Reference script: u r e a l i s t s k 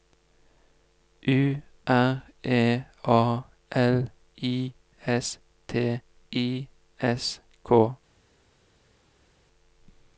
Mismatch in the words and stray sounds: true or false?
true